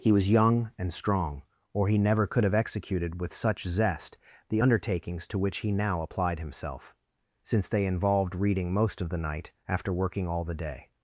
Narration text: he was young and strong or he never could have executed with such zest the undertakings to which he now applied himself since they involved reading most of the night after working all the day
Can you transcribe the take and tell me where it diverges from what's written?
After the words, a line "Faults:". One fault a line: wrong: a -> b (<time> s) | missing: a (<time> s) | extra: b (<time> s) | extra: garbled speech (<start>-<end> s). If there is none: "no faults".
he was young and strong or he never could have executed with such zest the undertakings to which he now applied himself since they involved reading most of the night after working all the day
Faults:
no faults